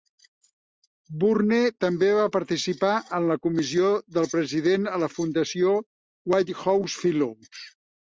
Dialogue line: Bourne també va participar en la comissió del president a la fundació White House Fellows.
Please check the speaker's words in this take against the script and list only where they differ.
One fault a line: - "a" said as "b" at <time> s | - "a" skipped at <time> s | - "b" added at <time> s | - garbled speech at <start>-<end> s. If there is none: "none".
none